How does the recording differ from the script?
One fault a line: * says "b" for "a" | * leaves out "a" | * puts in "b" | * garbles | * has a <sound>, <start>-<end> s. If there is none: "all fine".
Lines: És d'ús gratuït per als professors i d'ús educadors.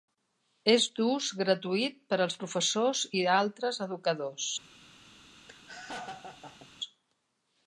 * says "altres" for "d'ús"
* has a laugh, 5.5-6.7 s